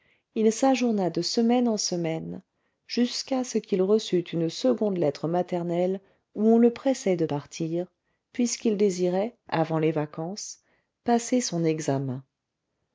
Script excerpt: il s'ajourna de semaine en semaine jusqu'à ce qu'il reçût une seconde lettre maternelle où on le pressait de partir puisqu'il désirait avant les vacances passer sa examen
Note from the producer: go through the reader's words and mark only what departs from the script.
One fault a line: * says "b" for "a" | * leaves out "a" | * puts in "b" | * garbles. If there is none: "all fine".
* says "son" for "sa"